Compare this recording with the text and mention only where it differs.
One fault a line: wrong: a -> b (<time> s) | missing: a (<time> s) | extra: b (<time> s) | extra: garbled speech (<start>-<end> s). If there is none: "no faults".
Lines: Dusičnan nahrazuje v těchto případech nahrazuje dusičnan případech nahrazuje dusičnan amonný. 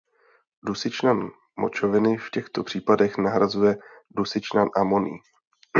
wrong: nahrazuje -> močoviny (1.6 s)
missing: případech nahrazuje dusičnan (4.7 s)